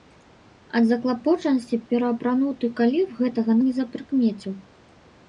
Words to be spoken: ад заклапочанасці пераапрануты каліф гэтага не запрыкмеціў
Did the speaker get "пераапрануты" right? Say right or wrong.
right